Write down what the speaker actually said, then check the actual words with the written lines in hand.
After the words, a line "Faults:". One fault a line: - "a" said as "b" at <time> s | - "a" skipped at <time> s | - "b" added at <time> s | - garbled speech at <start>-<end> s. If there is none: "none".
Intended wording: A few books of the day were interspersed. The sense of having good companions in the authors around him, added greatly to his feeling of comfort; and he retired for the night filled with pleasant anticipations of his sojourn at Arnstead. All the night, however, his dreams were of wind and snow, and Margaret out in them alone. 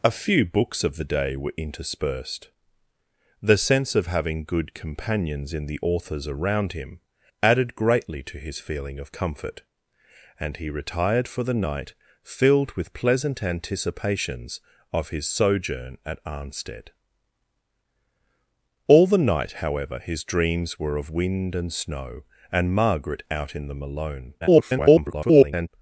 A few books of the day were interspersed. The sense of having good companions in the authors around him, added greatly to his feeling of comfort; and he retired for the night filled with pleasant anticipations of his sojourn at Arnstead. All the night, however, his dreams were of wind and snow, and Margaret out in them alone. [garbled]
Faults:
- garbled speech at 24.4-25.7 s